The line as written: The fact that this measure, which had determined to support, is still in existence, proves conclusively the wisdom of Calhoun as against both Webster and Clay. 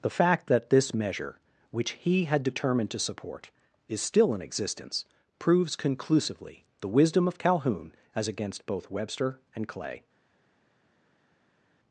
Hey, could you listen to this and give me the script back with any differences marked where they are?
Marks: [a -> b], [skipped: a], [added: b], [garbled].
The fact that this measure, which [added: he] had determined to support, is still in existence, proves conclusively the wisdom of Calhoun as against both Webster and Clay.